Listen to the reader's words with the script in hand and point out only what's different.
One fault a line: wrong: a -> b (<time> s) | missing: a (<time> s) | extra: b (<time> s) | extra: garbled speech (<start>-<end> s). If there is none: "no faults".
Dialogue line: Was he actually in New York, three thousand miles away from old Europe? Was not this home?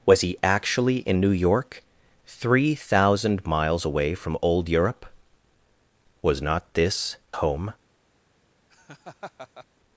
no faults